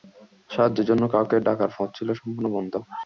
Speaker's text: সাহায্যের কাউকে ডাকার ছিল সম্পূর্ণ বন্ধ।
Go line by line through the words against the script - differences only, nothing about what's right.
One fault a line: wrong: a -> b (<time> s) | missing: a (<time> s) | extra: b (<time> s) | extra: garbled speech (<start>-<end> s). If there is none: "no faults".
extra: জন্য (0.9 s)
extra: পথ (1.8 s)